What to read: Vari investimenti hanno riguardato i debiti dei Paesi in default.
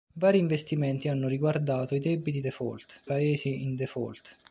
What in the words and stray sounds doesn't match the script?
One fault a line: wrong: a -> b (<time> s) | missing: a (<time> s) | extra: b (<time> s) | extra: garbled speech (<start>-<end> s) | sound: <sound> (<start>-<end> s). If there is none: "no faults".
wrong: dei -> default (2.4 s)